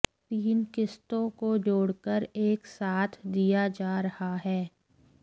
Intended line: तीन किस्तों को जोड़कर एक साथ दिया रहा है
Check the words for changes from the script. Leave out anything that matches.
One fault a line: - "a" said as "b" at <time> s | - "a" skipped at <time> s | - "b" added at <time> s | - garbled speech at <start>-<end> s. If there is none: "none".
- "जा" added at 3.8 s